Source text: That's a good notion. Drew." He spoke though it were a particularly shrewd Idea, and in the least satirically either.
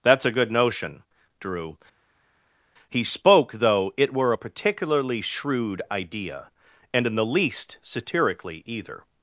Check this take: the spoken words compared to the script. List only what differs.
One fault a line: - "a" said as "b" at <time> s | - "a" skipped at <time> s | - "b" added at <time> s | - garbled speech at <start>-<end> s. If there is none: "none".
none